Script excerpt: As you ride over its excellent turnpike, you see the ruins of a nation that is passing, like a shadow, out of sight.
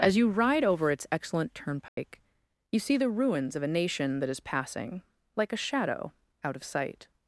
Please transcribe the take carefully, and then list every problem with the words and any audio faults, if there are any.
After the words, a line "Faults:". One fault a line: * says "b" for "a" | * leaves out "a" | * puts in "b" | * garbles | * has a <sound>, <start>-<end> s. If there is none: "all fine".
As you ride over its excellent turnpike, you see the ruins of a nation that is passing, like a shadow, out of sight.
Faults:
* has a dropout, 1.9-2.0 s